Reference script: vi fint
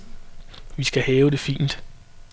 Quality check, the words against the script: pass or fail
fail